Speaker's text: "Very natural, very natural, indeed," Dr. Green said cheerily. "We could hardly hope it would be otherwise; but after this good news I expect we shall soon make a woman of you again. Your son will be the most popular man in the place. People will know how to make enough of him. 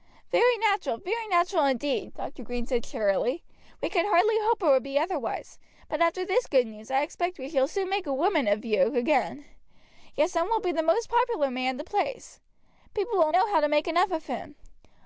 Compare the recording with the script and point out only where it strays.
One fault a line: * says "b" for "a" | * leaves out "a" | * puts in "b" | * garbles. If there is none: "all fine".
all fine